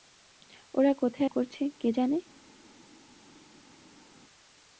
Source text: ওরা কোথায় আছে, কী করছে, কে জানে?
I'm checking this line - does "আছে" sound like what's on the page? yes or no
no